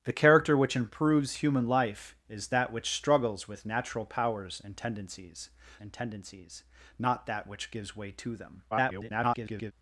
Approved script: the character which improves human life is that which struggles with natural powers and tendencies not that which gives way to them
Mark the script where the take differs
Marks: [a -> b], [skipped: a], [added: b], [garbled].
the character which improves human life is that which struggles with natural powers and tendencies [added: and tendencies] not that which gives way to them [garbled]